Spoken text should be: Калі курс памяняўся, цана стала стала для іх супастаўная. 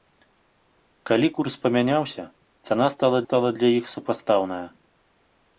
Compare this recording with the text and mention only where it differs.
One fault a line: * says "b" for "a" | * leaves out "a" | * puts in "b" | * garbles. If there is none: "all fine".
all fine